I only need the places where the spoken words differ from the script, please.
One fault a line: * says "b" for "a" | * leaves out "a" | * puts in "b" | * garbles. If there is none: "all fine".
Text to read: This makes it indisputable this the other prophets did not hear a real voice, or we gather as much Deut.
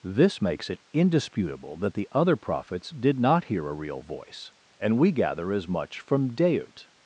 * says "that" for "this"
* says "and" for "or"
* puts in "from"